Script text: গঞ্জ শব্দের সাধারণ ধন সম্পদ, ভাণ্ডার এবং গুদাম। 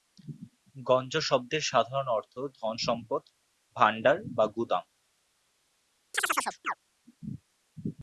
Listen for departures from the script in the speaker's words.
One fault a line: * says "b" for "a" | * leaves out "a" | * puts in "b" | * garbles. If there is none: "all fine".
* puts in "অর্থ"
* says "বা" for "এবং"